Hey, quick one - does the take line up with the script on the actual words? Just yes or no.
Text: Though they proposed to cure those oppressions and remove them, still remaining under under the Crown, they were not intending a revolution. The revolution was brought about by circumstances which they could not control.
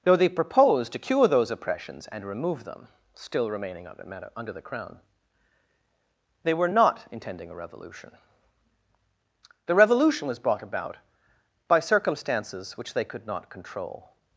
yes